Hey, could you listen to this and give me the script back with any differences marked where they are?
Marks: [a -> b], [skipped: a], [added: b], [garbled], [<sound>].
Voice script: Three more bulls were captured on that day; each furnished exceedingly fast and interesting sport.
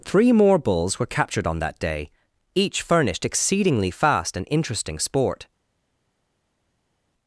Three more bulls were captured on that day; each furnished exceedingly fast and interesting sport.